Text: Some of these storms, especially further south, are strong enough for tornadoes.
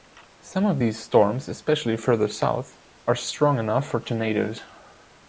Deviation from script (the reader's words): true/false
false